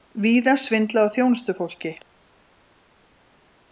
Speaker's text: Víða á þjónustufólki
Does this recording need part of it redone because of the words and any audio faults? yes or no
yes